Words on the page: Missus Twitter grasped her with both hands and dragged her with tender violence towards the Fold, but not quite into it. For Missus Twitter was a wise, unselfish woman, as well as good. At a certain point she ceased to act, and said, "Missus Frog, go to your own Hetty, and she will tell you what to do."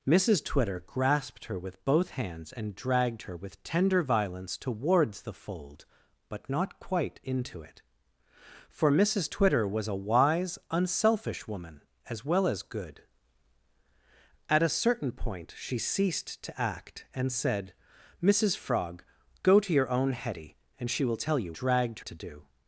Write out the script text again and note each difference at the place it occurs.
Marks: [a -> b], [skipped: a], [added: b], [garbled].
Missus Twitter grasped her with both hands and dragged her with tender violence towards the Fold, but not quite into it. For Missus Twitter was a wise, unselfish woman, as well as good. At a certain point she ceased to act, and said, "Missus Frog, go to your own Hetty, and she will tell you [what -> dragged] to do."